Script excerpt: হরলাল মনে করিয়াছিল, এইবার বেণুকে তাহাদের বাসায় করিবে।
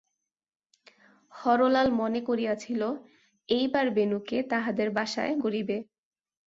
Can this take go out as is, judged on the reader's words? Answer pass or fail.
pass